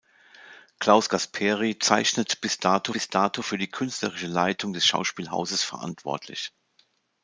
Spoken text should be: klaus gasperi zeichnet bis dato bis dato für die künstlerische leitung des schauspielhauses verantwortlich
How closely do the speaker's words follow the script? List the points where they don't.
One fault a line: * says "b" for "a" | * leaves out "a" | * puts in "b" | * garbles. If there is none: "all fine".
all fine